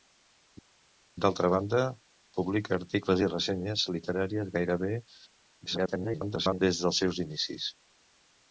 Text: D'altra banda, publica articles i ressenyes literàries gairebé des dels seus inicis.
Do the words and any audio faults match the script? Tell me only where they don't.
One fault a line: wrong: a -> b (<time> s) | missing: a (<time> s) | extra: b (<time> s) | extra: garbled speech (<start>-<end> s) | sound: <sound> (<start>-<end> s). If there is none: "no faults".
extra: garbled speech (5.7-6.6 s)